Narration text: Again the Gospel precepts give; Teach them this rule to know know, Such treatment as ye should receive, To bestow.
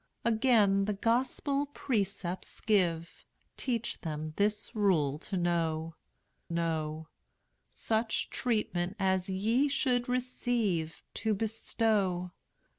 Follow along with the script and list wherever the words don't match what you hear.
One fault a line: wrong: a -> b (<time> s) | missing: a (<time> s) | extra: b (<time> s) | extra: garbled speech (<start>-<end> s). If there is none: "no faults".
no faults